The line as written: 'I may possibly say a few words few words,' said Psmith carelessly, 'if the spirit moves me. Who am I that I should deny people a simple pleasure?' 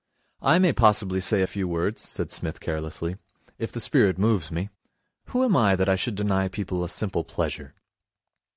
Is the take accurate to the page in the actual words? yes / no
no